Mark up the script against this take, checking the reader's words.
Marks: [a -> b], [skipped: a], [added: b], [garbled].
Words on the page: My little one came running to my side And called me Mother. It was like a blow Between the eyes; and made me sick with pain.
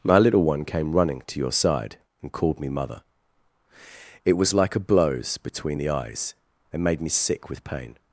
My little one came running to [my -> your] side And called me Mother. It was like a [blow -> blows] Between the eyes; and made me sick with pain.